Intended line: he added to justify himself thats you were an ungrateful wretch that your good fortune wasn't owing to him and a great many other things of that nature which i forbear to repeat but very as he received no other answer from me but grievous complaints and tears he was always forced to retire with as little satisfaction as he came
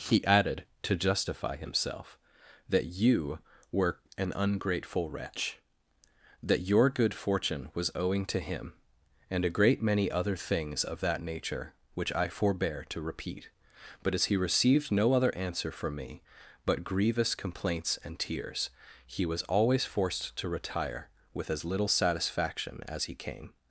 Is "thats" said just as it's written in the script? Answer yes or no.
no